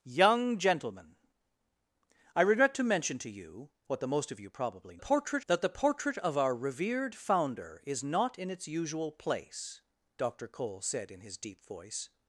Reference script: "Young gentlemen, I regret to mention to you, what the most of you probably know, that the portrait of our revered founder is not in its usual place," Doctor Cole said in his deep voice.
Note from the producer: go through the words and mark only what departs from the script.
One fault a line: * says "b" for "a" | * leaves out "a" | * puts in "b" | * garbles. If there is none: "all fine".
* says "portrait" for "know"